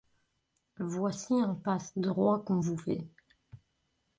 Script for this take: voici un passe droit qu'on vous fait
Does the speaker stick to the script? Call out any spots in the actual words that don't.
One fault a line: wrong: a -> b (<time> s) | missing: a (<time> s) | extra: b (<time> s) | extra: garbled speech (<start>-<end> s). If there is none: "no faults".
no faults